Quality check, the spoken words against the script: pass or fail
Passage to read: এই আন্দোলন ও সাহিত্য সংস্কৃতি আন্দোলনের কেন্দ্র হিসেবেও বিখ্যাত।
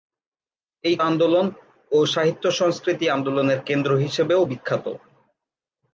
pass